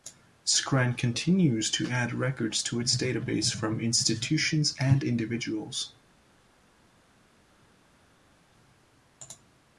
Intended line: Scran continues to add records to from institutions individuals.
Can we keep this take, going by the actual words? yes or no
no